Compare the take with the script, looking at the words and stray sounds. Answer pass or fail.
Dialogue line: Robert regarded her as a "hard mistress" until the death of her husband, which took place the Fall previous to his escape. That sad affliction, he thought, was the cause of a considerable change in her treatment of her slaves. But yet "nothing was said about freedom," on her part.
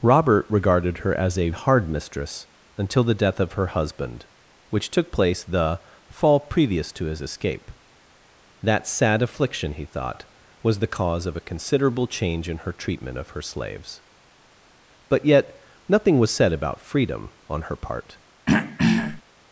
fail